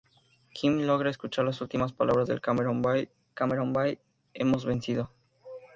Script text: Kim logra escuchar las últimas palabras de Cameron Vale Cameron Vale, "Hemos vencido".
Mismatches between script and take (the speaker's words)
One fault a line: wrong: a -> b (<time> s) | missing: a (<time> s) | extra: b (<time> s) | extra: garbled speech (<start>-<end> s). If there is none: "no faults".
no faults